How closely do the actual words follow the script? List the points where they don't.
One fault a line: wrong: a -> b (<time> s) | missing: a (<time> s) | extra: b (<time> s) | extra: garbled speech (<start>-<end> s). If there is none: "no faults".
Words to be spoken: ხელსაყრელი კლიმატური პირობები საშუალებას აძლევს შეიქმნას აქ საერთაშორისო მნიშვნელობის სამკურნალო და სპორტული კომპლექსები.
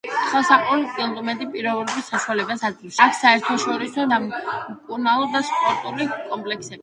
missing: შეიქმნას (3.0 s)
missing: მნიშვნელობის (4.1 s)